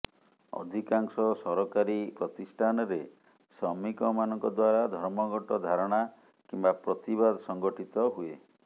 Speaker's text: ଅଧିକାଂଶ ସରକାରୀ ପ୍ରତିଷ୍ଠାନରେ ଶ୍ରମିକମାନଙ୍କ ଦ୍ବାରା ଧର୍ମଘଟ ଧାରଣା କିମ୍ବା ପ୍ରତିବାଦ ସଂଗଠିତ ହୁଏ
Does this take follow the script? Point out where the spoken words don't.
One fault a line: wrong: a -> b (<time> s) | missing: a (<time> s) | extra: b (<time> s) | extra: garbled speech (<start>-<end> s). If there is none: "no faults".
no faults